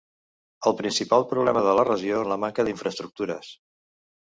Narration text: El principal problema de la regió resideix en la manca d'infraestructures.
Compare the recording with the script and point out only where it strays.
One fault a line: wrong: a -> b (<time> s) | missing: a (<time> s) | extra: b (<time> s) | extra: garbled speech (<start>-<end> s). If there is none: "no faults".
missing: resideix (2.2 s)